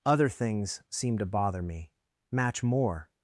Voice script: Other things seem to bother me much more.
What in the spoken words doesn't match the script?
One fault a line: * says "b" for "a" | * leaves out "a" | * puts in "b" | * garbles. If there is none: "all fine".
* says "match" for "much"